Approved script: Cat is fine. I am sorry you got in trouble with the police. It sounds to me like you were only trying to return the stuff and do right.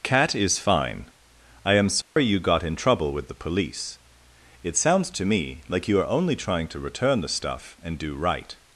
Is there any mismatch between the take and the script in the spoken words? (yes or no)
yes